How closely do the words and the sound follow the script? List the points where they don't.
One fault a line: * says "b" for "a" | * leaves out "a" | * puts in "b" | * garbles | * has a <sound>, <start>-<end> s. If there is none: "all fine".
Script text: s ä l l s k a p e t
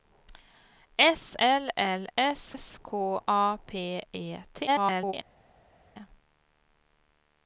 * says "l" for "ä"
* says "s" for "l"
* garbles